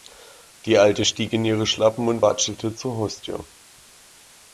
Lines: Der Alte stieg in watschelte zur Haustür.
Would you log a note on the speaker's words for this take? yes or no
yes